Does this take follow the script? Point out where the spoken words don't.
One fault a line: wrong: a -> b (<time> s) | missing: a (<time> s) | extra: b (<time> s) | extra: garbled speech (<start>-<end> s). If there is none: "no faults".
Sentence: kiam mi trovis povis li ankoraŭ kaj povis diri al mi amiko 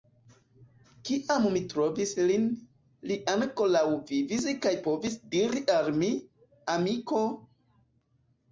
wrong: povis -> lin (2.3 s)
extra: vivis (4.1 s)